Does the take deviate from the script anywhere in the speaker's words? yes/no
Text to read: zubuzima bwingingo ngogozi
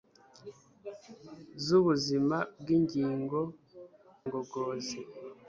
no